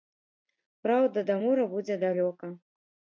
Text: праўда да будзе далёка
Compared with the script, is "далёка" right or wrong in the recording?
right